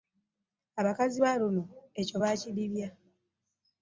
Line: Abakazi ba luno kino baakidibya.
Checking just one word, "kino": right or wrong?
wrong